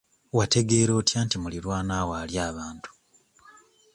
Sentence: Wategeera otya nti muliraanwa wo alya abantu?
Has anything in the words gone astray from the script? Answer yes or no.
no